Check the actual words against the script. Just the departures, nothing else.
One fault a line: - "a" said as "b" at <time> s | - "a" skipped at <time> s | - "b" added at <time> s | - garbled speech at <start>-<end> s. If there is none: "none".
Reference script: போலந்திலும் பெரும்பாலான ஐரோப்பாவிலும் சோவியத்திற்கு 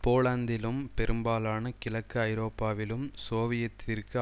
- "கிழக்கு" added at 1.8 s